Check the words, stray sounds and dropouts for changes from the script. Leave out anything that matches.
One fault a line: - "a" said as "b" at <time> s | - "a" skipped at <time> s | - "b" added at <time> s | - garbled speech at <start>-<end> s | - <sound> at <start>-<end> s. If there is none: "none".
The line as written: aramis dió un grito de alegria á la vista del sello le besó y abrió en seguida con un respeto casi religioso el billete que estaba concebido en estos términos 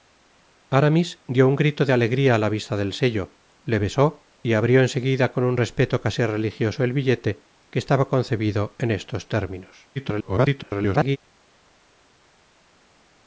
- garbled speech at 10.0-11.2 s